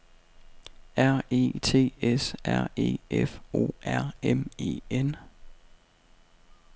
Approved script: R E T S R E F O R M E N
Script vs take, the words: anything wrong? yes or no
no